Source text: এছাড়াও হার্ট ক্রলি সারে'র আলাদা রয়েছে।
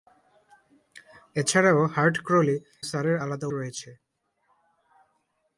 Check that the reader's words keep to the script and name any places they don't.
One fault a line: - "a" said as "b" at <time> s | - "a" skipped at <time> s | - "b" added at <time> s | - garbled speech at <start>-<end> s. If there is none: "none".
none